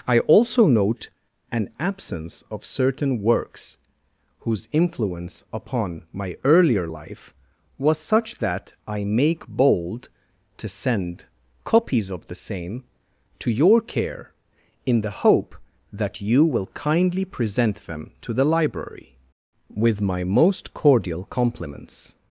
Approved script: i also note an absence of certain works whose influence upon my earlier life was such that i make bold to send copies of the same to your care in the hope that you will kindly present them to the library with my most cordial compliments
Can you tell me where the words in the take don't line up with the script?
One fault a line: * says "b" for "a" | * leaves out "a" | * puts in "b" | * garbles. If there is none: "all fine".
all fine